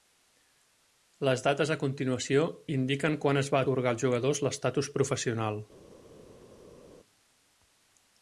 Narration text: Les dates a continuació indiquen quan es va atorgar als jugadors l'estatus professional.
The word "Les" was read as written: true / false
true